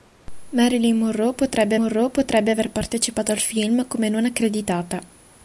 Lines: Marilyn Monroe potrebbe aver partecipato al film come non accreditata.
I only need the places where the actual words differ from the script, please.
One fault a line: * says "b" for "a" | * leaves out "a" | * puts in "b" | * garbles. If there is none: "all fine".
* puts in "Monroe potrebbe"